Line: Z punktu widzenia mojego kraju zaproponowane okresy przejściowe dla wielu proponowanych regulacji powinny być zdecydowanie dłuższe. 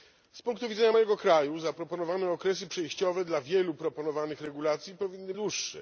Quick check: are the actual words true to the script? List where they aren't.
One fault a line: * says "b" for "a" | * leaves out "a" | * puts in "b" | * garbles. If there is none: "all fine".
* leaves out "być zdecydowanie"